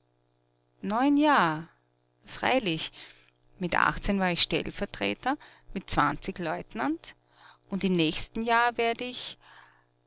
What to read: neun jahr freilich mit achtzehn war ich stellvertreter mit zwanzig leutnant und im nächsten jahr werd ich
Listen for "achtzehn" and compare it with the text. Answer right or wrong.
right